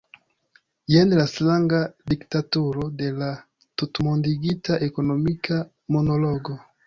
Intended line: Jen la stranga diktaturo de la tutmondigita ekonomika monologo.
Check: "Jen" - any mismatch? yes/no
no